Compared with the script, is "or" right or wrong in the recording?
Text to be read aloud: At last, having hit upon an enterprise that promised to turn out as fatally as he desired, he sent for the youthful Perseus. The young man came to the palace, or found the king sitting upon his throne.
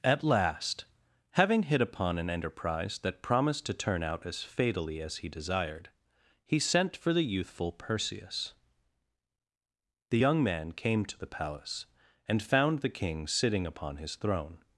wrong